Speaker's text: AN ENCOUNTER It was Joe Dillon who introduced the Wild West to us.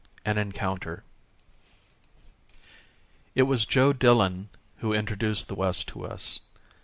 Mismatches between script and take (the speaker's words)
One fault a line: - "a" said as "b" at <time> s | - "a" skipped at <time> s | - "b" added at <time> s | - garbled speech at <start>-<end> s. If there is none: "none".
- "Wild" skipped at 5.5 s